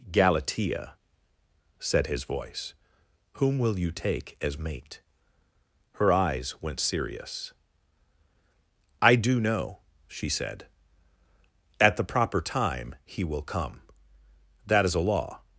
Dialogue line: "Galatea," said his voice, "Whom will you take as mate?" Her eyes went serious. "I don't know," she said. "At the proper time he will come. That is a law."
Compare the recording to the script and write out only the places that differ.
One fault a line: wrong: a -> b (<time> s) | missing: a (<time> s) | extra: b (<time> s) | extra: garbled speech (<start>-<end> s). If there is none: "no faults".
wrong: don't -> do (9.2 s)